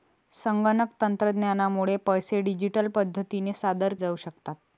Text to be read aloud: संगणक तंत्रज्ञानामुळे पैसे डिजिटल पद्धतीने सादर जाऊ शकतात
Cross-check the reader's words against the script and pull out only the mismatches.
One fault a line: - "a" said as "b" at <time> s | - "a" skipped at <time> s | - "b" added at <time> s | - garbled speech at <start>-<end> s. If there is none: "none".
none